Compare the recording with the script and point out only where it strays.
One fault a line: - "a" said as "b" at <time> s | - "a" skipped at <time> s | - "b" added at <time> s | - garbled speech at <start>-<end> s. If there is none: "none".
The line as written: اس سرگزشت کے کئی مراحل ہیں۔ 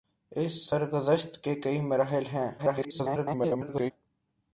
- garbled speech at 2.6-3.9 s